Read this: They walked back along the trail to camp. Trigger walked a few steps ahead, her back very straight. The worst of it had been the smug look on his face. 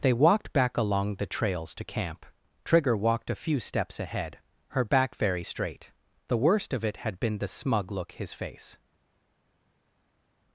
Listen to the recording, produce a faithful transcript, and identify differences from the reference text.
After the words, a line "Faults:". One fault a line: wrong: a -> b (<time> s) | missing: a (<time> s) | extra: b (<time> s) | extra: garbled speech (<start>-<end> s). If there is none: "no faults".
They walked back along the trails to camp. Trigger walked a few steps ahead, her back very straight. The worst of it had been the smug look his face.
Faults:
wrong: trail -> trails (1.3 s)
missing: on (8.1 s)